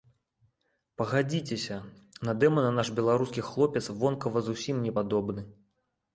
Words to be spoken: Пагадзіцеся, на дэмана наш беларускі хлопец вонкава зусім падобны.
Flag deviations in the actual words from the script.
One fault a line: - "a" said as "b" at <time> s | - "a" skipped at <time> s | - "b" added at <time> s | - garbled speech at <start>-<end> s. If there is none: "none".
- "не" added at 4.9 s